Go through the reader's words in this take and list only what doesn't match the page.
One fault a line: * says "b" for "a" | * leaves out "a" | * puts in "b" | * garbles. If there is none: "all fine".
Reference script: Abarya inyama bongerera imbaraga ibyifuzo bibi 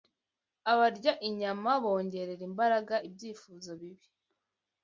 all fine